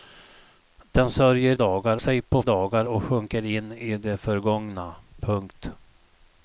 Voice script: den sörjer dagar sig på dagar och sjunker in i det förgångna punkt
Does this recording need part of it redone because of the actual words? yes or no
no